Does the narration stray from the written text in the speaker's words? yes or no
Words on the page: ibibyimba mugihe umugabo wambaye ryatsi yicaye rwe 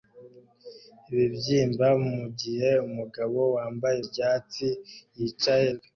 no